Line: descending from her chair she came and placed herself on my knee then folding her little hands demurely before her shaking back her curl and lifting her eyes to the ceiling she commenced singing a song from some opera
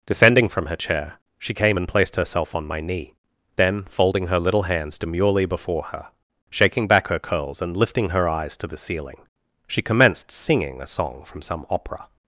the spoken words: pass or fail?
fail